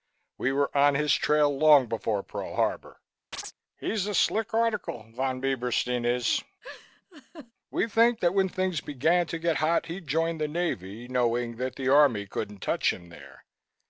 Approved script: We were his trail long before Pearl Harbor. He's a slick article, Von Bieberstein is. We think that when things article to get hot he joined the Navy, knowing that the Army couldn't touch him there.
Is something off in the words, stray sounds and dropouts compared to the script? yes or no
yes